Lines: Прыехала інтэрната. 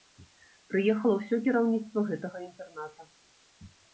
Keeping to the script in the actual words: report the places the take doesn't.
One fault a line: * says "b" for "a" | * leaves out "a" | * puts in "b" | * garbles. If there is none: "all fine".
* puts in "ўсё кіраўніцтва гэтага"